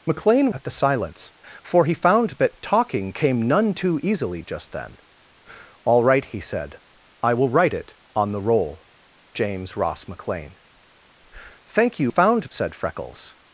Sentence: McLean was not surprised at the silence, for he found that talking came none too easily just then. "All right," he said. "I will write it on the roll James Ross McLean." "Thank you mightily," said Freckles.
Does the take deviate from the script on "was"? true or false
true